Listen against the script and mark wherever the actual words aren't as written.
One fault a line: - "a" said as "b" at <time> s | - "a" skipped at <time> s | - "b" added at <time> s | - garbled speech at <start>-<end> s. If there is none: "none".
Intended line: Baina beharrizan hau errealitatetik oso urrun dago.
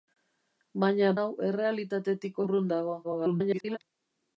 - "beharrizan" skipped at 1.1 s
- "oso" skipped at 2.4 s
- garbled speech at 3.0-3.8 s